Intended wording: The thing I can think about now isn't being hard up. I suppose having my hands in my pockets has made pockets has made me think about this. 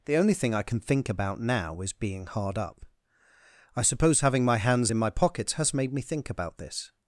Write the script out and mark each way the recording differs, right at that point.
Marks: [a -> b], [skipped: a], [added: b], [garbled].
The [added: only] thing I can think about now [isn't -> is] being hard up. I suppose having my hands in my pockets has made [skipped: pockets has made] me think about this.